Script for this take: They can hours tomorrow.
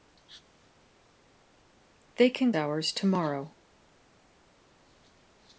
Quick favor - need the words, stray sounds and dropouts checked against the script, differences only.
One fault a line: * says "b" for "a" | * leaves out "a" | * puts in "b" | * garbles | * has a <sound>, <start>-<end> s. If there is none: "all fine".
all fine